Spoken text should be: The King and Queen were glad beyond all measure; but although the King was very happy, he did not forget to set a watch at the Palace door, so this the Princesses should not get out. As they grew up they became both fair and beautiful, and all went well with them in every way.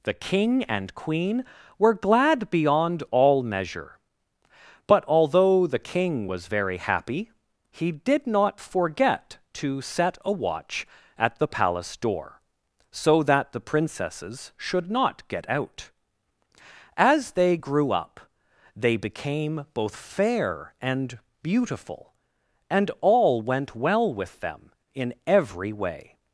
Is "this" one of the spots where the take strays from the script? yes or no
yes